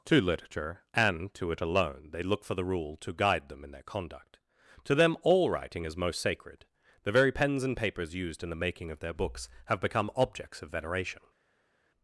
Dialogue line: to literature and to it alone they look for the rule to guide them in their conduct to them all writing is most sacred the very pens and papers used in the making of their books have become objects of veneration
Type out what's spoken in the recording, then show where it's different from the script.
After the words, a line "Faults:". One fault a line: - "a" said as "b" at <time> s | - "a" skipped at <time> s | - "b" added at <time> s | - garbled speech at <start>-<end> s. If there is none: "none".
to literature and to it alone they look for the rule to guide them in their conduct to them all writing is most sacred the very pens and papers used in the making of their books have become objects of veneration
Faults:
none